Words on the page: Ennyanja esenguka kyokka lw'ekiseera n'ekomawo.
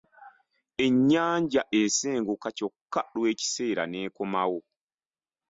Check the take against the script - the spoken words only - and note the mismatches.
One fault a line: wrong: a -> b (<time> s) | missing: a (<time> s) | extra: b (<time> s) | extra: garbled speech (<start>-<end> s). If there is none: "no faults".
no faults